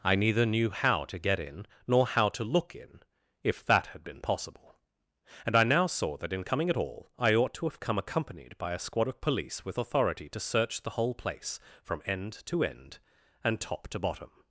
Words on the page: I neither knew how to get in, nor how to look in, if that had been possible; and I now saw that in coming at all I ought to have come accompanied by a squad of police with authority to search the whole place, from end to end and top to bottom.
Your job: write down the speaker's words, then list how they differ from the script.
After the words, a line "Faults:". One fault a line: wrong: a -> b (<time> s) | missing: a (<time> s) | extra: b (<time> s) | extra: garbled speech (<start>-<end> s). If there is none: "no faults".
I neither knew how to get in, nor how to look in, if that had been possible; and I now saw that in coming at all I ought to have come accompanied by a squad of police with authority to search the whole place, from end to end and top to bottom.
Faults:
no faults